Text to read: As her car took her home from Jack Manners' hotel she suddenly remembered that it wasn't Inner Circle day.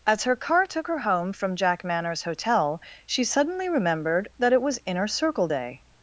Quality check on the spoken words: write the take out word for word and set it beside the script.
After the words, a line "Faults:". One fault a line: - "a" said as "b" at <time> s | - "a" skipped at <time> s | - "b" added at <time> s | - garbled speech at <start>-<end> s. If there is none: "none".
As her car took her home from Jack Manners' hotel she suddenly remembered that it was Inner Circle day.
Faults:
- "wasn't" said as "was" at 4.6 s